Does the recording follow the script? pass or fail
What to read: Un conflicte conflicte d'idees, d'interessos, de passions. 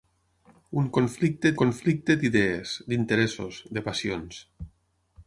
pass